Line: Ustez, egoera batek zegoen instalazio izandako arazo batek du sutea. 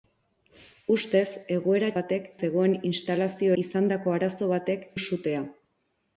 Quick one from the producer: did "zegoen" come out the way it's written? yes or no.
yes